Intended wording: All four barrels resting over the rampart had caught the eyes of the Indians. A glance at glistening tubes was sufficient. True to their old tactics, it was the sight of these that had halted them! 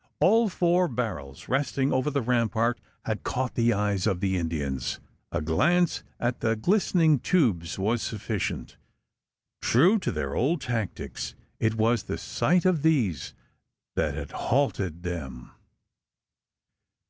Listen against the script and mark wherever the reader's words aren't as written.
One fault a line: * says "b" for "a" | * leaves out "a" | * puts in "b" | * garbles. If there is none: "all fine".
* puts in "the"